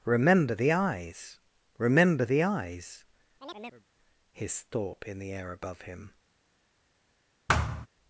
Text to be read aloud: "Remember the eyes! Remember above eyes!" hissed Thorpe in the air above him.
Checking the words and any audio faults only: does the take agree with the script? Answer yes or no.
no